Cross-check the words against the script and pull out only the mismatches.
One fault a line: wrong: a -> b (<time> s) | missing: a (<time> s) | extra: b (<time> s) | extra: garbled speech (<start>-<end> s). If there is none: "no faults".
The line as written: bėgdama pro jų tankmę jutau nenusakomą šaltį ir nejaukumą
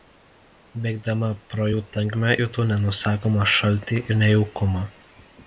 no faults